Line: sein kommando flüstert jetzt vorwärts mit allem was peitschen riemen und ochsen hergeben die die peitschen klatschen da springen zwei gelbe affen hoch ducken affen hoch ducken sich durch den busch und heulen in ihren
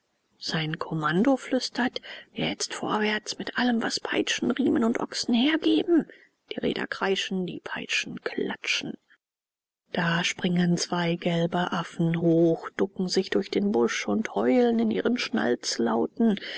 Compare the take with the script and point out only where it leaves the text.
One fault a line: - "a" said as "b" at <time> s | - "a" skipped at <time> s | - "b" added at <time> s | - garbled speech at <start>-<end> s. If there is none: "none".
- "räder kreischen" added at 6.6 s
- "affen hoch ducken" skipped at 13.1 s